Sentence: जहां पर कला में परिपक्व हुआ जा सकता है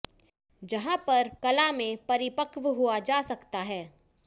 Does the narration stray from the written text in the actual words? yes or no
no